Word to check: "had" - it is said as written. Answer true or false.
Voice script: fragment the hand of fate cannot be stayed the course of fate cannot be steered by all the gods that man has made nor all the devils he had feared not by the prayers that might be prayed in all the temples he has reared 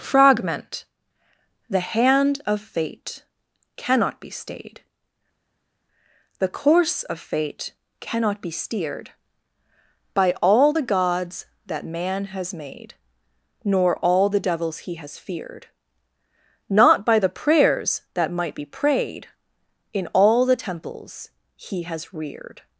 false